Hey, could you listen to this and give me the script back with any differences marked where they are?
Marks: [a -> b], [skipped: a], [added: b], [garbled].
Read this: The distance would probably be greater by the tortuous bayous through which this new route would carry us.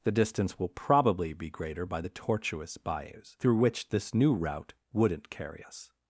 The distance [would -> will] probably be greater by the tortuous bayous through which this new route [would -> wouldn't] carry us.